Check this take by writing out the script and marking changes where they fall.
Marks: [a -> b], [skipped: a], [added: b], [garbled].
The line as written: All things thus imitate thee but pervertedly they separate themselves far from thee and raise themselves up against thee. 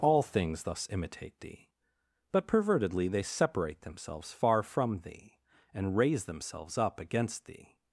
All things thus imitate thee but pervertedly they separate themselves far from thee and raise themselves up against thee.